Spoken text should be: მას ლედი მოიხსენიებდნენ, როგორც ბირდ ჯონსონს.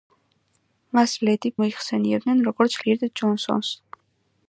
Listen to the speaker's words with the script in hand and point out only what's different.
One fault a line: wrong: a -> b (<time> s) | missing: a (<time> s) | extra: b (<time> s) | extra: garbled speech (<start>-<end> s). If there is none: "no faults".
no faults